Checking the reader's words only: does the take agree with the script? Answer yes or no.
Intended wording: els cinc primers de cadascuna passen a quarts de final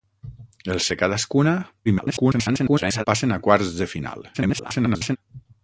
no